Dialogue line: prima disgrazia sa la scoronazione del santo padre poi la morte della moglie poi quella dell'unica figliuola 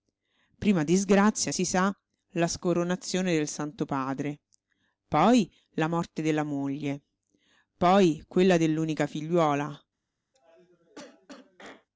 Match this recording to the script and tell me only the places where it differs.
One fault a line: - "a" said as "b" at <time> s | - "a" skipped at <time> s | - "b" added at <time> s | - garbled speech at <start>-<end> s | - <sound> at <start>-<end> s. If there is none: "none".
- "si" added at 1.5 s
- cough at 10.3-11.9 s